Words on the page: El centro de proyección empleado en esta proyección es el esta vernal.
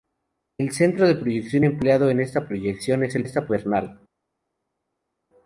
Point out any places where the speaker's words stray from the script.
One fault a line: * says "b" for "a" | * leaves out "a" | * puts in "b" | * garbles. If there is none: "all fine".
all fine